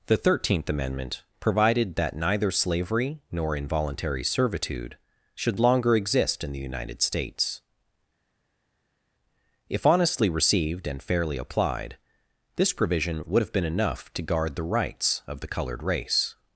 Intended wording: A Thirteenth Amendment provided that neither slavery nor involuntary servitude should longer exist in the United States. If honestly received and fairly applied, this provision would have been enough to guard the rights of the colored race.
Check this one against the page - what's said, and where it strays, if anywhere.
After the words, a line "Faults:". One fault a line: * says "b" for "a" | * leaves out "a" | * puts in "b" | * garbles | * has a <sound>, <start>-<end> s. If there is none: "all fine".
The Thirteenth Amendment provided that neither slavery nor involuntary servitude should longer exist in the United States. If honestly received and fairly applied, this provision would have been enough to guard the rights of the colored race.
Faults:
* says "The" for "A"